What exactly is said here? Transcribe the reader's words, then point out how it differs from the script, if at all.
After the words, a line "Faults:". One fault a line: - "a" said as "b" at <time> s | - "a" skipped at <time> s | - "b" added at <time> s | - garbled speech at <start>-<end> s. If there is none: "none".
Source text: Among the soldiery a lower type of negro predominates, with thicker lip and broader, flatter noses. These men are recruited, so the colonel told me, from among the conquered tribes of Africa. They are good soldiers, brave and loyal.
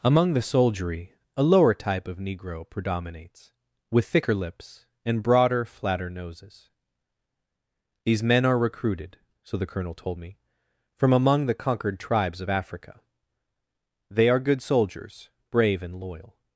Among the soldiery a lower type of negro predominates, with thicker lips and broader, flatter noses. These men are recruited, so the colonel told me, from among the conquered tribes of Africa. They are good soldiers, brave and loyal.
Faults:
- "lip" said as "lips" at 4.3 s